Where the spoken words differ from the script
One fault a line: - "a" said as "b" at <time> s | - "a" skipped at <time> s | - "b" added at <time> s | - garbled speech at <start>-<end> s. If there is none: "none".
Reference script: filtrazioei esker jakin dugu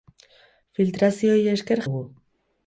- "jakin" skipped at 1.8 s